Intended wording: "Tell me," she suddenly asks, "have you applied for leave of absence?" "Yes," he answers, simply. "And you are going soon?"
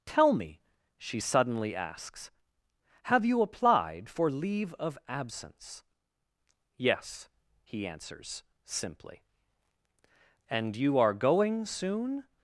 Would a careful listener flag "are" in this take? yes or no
no